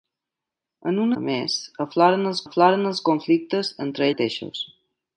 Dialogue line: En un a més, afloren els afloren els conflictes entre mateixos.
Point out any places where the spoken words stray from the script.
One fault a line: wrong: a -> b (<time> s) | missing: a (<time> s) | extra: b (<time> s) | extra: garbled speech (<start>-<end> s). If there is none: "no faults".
no faults